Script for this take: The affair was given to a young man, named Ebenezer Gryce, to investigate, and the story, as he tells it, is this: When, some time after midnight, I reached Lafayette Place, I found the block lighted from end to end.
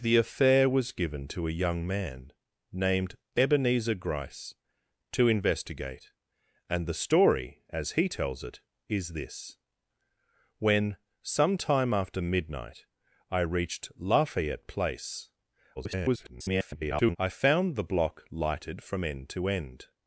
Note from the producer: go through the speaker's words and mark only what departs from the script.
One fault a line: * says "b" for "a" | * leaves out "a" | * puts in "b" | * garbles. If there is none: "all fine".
* garbles